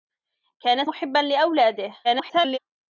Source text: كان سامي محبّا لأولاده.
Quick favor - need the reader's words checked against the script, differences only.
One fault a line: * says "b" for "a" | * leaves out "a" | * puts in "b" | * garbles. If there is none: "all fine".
* leaves out "سامي"
* garbles